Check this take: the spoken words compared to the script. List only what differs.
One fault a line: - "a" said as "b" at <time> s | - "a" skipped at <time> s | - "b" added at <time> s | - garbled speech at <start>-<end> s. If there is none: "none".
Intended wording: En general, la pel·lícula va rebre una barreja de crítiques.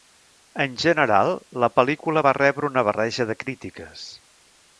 none